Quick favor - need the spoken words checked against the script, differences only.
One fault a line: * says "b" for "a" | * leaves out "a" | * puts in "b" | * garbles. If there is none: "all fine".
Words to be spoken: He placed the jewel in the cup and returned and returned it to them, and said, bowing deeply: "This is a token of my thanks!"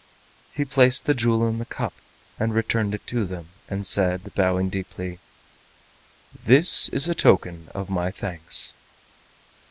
* leaves out "and returned"